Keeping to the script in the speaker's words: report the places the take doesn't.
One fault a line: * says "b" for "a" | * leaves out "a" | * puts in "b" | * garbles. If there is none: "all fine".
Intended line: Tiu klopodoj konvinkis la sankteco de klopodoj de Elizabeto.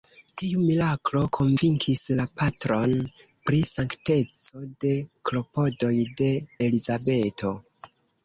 * says "miraklo" for "klopodoj"
* puts in "patron pri"